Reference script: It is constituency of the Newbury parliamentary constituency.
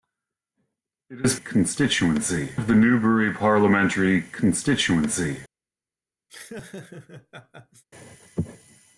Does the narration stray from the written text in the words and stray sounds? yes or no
yes